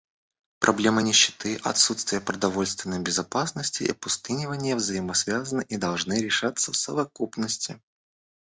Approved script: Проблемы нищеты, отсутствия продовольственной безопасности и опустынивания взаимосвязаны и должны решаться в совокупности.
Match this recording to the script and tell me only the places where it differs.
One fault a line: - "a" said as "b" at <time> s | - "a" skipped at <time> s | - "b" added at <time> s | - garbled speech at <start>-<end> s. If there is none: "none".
none